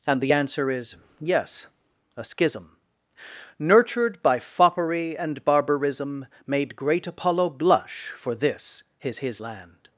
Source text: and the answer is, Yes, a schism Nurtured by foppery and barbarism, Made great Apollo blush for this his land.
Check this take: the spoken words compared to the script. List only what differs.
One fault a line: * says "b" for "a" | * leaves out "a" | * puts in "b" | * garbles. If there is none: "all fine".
* puts in "his"